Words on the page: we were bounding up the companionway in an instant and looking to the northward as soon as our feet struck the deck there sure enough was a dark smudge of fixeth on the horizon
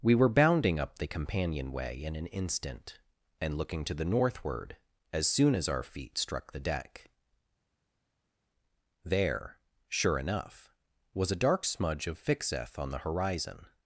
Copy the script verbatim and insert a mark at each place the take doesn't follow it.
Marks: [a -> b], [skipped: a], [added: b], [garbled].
we were bounding up the companionway in an instant and looking to the northward as soon as our feet struck the deck there sure enough was a dark smudge of fixeth on the horizon